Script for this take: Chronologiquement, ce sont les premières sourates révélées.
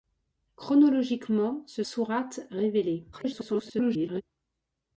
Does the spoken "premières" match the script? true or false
false